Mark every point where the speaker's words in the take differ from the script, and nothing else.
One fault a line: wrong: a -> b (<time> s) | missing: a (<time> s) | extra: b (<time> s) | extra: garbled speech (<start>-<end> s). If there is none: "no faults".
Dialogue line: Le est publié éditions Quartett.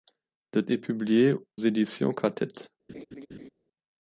no faults